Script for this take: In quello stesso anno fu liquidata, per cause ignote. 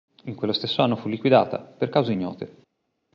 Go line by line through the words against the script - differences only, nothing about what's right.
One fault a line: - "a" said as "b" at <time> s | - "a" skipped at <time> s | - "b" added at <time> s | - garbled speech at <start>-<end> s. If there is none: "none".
none